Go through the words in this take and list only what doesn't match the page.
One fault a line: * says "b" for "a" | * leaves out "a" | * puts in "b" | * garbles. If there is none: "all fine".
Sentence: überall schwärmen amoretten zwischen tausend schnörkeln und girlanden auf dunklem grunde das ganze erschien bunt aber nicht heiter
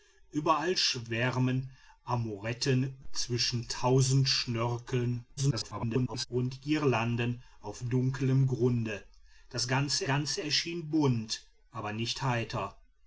* garbles
* puts in "ganze"